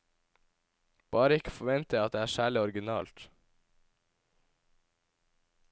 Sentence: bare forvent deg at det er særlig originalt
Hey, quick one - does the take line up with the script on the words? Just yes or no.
no